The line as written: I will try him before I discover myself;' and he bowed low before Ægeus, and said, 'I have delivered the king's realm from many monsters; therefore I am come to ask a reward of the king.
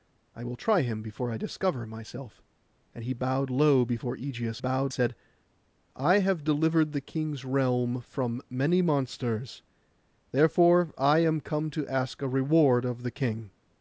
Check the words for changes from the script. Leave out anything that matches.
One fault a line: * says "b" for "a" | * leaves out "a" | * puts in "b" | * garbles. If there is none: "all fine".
* says "bowed" for "and"